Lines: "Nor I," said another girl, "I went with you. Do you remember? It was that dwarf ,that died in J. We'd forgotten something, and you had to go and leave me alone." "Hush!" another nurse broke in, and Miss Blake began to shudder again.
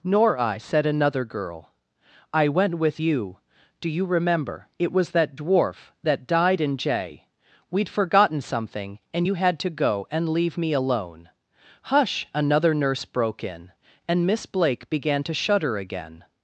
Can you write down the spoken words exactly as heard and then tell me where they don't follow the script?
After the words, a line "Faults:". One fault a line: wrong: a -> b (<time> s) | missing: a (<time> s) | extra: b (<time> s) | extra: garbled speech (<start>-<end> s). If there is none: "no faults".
"Nor I," said another girl, "I went with you. Do you remember? It was that dwarf ,that died in J. We'd forgotten something, and you had to go and leave me alone." "Hush!" another nurse broke in, and Miss Blake began to shudder again.
Faults:
no faults